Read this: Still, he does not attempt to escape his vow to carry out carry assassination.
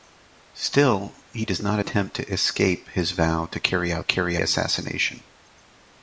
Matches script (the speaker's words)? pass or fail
pass